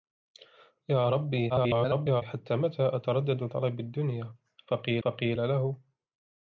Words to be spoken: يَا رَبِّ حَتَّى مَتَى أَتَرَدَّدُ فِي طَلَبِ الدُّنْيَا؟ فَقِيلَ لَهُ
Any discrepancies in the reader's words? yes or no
yes